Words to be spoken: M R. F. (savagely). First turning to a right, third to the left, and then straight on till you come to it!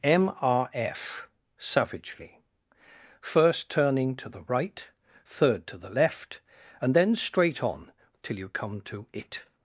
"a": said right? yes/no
no